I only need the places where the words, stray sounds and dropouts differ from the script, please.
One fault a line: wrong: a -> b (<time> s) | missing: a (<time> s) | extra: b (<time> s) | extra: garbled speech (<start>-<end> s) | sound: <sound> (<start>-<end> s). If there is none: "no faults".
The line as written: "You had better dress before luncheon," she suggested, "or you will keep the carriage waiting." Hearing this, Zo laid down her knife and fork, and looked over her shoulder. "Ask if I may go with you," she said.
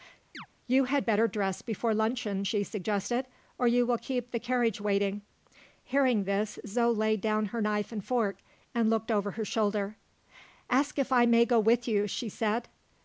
sound: chirp (0.3-0.5 s)